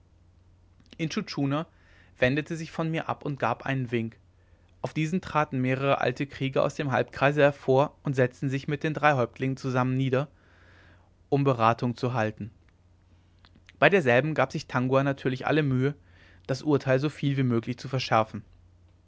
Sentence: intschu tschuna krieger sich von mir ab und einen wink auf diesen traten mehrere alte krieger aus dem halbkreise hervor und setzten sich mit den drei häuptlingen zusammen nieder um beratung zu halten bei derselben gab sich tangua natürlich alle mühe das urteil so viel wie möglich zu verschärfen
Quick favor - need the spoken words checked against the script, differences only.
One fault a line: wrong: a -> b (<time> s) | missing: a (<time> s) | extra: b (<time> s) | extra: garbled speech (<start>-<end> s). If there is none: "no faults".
wrong: krieger -> wendete (2.2 s)
extra: gab (3.4 s)